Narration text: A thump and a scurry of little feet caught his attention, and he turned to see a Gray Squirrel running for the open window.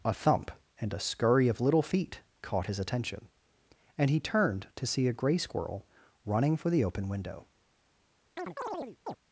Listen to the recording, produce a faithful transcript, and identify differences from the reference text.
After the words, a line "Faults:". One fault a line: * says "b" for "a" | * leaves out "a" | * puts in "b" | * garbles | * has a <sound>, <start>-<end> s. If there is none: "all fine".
A thump and a scurry of little feet caught his attention, and he turned to see a Gray Squirrel running for the open window.
Faults:
* has a chirp, 8.4-9.2 s